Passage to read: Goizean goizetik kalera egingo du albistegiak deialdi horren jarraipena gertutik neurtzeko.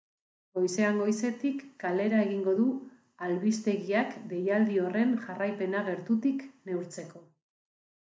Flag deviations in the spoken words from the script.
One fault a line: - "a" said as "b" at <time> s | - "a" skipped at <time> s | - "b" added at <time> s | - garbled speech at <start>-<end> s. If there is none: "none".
none